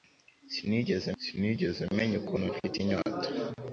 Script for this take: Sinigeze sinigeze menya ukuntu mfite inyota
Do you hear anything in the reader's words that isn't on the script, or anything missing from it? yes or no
no